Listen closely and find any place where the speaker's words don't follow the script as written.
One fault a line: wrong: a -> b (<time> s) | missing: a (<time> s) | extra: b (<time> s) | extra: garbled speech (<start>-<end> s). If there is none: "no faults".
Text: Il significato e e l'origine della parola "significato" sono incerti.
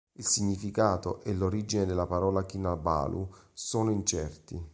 missing: e (1.3 s)
wrong: significato -> kinabalu (2.4 s)